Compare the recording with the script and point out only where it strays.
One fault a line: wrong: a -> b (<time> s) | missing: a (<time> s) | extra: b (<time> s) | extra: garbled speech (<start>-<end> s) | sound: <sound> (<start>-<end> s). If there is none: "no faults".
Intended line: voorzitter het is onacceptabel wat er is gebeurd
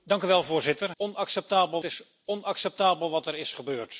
wrong: het -> onacceptabel (1.0 s)